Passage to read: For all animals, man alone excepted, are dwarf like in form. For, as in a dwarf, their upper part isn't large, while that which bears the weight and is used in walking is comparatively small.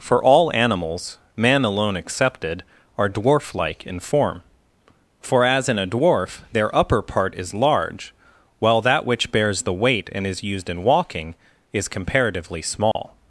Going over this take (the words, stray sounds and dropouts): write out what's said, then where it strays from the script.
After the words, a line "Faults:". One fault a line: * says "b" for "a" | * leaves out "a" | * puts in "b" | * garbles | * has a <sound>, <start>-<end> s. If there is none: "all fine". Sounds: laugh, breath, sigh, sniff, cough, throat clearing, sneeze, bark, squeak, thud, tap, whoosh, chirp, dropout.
For all animals, man alone excepted, are dwarf like in form. For, as in a dwarf, their upper part is large, while that which bears the weight and is used in walking is comparatively small.
Faults:
* says "is" for "isn't"
* has a dropout, 12.9-13.0 s